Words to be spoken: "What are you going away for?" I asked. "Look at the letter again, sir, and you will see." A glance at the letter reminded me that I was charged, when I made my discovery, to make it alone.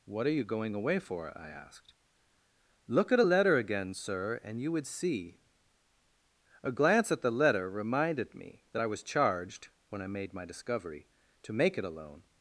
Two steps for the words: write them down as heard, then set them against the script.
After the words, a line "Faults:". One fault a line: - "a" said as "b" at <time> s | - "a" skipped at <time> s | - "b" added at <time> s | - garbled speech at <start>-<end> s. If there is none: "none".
"What are you going away for?" I asked. "Look at a letter again, sir, and you would see." A glance at the letter reminded me that I was charged, when I made my discovery, to make it alone.
Faults:
- "the" said as "a" at 3.2 s
- "will" said as "would" at 4.7 s